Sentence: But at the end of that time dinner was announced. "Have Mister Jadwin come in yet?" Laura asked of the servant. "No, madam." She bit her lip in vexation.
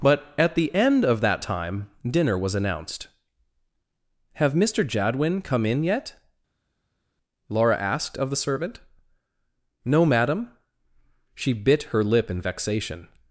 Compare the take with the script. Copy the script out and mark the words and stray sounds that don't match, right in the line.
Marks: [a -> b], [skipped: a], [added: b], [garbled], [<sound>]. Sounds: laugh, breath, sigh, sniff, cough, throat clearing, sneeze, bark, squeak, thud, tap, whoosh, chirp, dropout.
But at the end of that time dinner was announced. "Have Mister Jadwin come in yet?" Laura asked of the servant. "No, madam." She bit her lip in vexation.